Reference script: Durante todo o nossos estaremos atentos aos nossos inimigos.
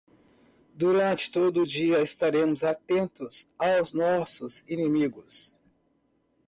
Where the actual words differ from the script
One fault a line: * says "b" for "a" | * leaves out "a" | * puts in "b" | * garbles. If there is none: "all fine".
* says "dia" for "nossos"